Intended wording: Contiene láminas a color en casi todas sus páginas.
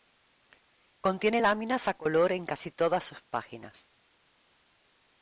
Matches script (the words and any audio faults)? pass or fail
pass